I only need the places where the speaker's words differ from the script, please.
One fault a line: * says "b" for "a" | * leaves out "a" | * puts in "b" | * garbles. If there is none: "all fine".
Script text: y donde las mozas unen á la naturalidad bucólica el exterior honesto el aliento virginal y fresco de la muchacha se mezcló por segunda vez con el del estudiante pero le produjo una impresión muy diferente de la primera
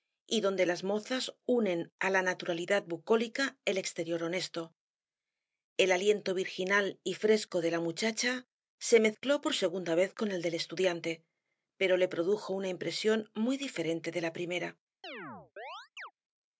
all fine